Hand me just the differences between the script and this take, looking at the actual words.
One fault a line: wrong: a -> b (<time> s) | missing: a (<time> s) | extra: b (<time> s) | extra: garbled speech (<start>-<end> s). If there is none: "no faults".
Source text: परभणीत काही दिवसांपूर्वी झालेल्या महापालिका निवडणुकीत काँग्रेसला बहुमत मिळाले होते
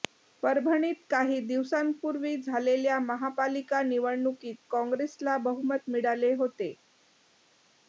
no faults